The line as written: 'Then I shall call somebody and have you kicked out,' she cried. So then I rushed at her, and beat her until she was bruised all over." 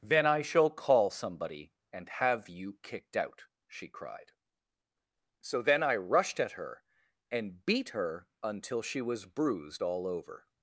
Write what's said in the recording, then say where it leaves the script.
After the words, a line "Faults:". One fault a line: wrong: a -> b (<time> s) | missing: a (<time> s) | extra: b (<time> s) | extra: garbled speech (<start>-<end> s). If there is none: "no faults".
'Then I shall call somebody and have you kicked out,' she cried. So then I rushed at her, and beat her until she was bruised all over."
Faults:
no faults